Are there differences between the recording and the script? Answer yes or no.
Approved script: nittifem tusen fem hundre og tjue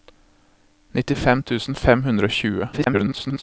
yes